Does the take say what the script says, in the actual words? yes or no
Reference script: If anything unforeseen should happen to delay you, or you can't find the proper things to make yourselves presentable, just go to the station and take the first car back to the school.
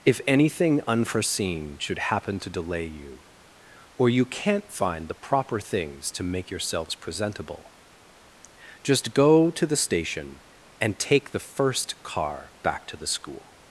yes